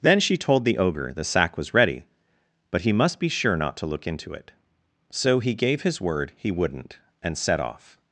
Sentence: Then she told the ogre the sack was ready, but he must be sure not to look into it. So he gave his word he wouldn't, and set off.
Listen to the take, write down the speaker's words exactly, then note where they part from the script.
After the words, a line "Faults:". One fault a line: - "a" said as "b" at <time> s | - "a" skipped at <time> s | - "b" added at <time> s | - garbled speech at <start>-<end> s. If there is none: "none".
Then she told the ogre the sack was ready, but he must be sure not to look into it. So he gave his word he wouldn't, and set off.
Faults:
none